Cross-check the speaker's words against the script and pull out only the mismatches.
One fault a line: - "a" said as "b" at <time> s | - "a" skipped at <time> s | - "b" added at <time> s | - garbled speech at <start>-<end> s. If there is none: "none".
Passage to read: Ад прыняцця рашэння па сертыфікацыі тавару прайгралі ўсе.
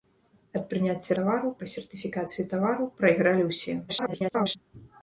- "рашэння" said as "тавару" at 1.2 s
- garbled speech at 3.9-4.6 s